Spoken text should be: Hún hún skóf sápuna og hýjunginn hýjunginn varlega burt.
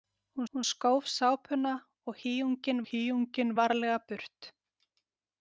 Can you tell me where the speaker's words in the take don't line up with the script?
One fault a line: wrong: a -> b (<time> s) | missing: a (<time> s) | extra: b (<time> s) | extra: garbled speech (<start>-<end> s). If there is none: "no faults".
no faults